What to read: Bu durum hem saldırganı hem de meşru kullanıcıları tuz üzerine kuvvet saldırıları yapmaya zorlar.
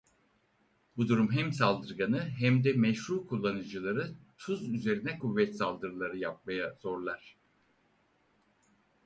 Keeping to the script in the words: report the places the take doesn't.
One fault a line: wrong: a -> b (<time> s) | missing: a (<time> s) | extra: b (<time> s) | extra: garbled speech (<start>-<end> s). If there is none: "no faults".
no faults